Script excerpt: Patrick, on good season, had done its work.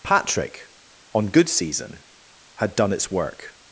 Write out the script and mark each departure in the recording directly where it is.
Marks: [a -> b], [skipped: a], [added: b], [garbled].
Patrick, on good season, had done its work.